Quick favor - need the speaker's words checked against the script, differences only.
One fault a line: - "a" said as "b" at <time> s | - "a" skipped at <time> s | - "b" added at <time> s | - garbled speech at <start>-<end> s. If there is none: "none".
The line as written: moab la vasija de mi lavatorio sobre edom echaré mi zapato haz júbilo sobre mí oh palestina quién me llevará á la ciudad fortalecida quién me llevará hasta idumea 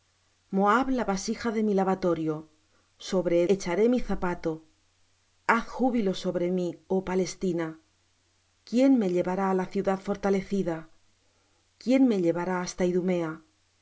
- "edom" skipped at 3.4 s